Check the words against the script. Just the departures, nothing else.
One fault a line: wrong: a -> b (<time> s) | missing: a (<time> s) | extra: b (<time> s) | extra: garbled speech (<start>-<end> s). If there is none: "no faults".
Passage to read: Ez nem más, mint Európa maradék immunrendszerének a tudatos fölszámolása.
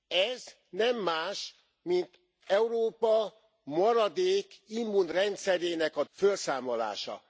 missing: tudatos (6.0 s)